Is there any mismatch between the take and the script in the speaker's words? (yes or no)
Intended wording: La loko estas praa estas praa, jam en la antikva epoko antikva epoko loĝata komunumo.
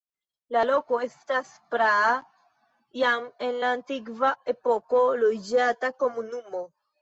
yes